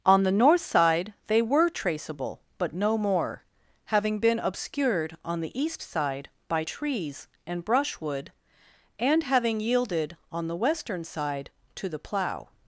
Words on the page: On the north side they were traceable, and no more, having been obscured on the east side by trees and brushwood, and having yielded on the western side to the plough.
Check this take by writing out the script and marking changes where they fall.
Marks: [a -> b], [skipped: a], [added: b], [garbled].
On the north side they were traceable, [and -> but] no more, having been obscured on the east side by trees and brushwood, and having yielded on the western side to the plough.